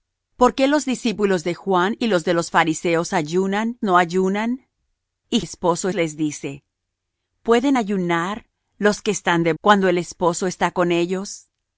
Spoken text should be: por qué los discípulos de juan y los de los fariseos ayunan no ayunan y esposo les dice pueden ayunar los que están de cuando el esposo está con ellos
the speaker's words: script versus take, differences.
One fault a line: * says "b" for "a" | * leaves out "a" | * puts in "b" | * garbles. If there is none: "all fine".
all fine